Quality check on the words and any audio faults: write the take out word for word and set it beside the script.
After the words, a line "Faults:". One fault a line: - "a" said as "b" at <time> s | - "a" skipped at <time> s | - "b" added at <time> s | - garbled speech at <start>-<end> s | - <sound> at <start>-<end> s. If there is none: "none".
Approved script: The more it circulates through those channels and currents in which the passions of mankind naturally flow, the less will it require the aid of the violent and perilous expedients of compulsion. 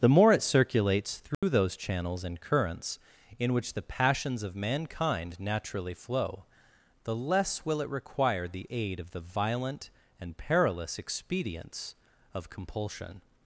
The more it circulates through those channels and currents in which the passions of mankind naturally flow, the less will it require the aid of the violent and perilous expedients of compulsion.
Faults:
- dropout at 1.3-1.4 s